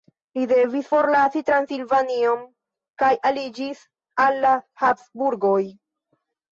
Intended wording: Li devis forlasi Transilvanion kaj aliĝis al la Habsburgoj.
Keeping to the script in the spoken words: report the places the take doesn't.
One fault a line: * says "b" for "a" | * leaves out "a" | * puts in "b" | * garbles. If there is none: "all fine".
all fine